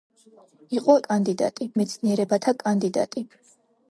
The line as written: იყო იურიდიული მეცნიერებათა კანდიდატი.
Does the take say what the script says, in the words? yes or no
no